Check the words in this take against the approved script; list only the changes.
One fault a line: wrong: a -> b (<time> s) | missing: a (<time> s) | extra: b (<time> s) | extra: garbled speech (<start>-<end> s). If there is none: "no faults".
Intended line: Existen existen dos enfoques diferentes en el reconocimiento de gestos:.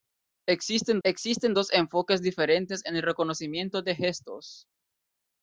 no faults